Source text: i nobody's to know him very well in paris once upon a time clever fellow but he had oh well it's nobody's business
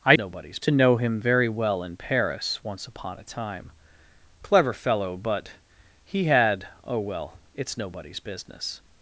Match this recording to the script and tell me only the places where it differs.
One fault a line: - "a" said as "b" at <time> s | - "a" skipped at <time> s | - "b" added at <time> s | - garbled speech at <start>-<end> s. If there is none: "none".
none